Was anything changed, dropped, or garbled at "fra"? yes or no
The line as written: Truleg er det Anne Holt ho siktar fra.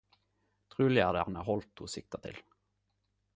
yes